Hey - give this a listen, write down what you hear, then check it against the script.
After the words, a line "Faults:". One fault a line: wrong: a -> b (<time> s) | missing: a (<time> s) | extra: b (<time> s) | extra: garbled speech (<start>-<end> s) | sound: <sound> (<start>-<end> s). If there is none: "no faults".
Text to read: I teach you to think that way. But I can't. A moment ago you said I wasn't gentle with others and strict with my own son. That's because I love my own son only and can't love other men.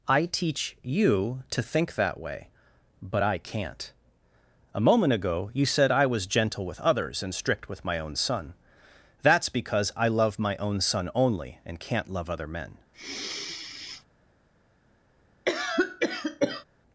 I teach you to think that way. But I can't. A moment ago you said I was gentle with others and strict with my own son. That's because I love my own son only and can't love other men.
Faults:
wrong: wasn't -> was (6.1 s)
sound: sigh (12.9-14.1 s)
sound: cough (15.5-16.6 s)